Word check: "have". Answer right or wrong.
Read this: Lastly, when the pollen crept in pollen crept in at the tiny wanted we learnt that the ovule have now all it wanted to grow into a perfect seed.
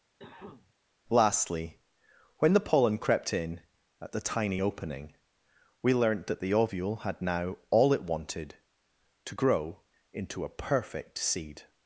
wrong